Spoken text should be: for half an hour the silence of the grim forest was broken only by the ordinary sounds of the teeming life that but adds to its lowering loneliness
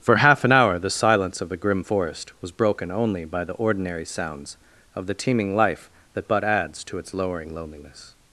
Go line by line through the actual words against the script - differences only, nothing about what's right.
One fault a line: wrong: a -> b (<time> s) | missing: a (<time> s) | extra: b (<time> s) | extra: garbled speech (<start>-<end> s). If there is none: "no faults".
no faults